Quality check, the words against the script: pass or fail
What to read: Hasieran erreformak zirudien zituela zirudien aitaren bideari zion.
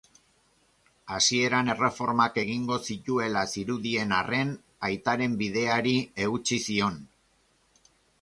fail